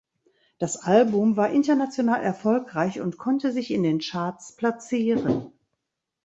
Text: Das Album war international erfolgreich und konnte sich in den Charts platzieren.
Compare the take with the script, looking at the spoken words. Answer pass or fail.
pass